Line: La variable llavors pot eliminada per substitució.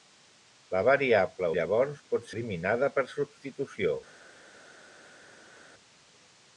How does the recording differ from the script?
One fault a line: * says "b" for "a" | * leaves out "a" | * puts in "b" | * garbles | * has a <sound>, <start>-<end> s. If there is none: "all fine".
all fine